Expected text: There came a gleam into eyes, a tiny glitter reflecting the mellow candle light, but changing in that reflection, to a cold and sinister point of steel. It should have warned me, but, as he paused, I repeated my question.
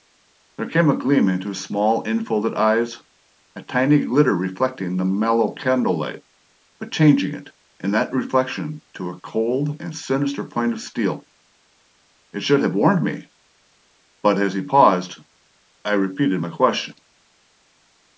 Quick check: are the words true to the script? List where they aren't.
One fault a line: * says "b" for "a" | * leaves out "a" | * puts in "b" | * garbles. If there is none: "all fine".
* puts in "his small infolded"
* puts in "it"